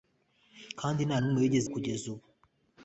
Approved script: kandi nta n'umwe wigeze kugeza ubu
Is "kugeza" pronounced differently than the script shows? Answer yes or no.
no